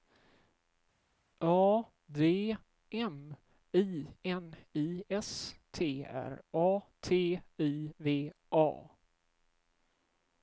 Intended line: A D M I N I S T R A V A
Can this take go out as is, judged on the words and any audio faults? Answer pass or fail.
fail